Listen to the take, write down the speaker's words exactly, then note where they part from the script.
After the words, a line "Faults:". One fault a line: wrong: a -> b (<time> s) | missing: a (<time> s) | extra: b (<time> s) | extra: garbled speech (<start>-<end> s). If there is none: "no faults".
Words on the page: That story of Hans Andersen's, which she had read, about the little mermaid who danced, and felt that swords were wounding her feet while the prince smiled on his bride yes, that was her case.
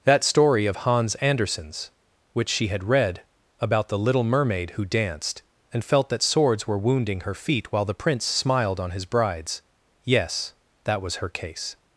That story of Hans Andersen's, which she had read, about the little mermaid who danced, and felt that swords were wounding her feet while the prince smiled on his brides yes, that was her case.
Faults:
wrong: bride -> brides (9.1 s)